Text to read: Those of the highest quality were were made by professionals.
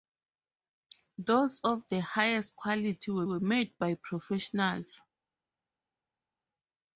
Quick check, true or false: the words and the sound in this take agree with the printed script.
true